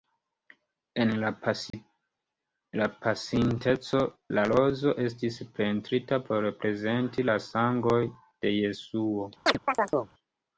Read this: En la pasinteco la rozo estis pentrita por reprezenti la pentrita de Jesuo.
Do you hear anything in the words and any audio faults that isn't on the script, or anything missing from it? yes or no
yes